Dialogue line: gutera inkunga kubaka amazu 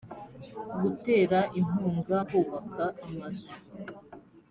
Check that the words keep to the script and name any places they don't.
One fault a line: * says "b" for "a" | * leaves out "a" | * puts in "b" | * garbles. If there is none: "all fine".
all fine